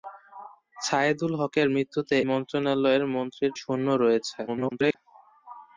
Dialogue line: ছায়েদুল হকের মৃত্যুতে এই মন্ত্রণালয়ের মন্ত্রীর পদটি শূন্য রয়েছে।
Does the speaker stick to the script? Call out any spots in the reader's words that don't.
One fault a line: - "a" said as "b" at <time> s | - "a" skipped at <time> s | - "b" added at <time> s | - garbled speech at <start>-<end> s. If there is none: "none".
- "এই" skipped at 2.2 s
- "পদটি" skipped at 3.5 s
- garbled speech at 4.5-5.0 s